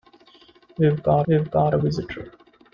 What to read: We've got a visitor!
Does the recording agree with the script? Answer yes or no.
no